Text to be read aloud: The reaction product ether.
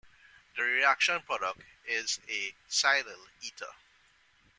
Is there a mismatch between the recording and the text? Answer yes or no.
yes